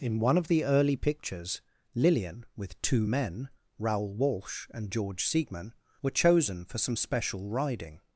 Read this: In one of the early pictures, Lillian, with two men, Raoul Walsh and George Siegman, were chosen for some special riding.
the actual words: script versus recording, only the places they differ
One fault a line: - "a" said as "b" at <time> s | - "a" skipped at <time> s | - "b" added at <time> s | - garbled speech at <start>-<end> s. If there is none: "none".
none